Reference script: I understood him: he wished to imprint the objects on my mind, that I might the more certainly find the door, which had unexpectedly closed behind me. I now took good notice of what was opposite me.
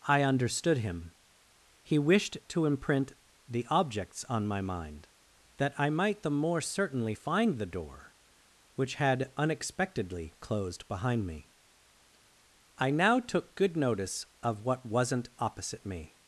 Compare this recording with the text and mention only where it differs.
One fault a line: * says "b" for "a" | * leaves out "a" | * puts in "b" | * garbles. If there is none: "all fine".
* says "wasn't" for "was"